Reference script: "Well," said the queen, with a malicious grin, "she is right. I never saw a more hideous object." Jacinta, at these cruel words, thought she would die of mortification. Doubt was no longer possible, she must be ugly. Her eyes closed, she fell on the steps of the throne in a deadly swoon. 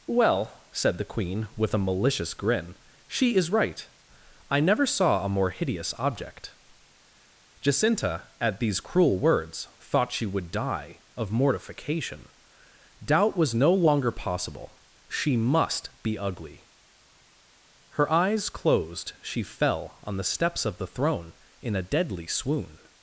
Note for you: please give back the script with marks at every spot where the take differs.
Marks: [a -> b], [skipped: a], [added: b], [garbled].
"Well," said the queen, with a malicious grin, "she is right. I never saw a more hideous object." Jacinta, at these cruel words, thought she would die of mortification. Doubt was no longer possible, she must be ugly. Her eyes closed, she fell on the steps of the throne in a deadly swoon.